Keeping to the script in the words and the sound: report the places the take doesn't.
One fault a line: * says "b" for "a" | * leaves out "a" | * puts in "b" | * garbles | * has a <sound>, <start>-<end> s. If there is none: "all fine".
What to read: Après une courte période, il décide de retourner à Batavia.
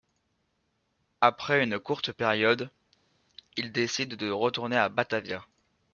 all fine